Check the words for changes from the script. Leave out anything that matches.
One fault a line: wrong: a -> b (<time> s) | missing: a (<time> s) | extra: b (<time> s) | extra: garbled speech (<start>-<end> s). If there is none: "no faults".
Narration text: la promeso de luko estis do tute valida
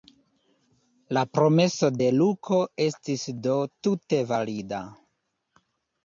no faults